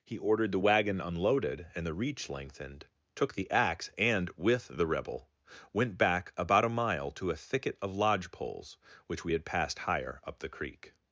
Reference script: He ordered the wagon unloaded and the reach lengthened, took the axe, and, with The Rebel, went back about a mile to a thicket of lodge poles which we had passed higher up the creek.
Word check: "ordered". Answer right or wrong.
right